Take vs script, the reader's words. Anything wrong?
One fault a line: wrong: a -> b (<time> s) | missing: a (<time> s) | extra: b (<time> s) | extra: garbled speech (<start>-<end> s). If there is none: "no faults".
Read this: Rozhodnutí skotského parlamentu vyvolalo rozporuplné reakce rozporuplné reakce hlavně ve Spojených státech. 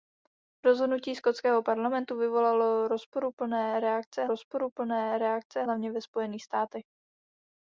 no faults